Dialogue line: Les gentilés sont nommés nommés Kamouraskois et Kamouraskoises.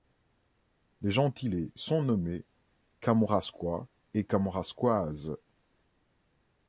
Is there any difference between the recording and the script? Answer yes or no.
yes